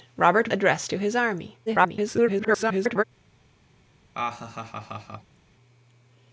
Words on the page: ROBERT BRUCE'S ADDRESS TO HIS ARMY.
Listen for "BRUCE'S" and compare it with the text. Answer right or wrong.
wrong